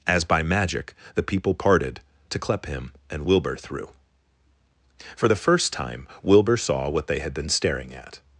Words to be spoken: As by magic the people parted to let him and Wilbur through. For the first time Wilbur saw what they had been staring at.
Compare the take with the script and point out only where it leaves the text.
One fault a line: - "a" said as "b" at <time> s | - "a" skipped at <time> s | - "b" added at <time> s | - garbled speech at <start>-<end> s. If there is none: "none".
- "let" said as "clep" at 2.4 s